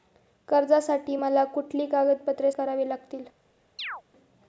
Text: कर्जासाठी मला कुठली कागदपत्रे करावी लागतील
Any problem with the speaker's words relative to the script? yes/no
no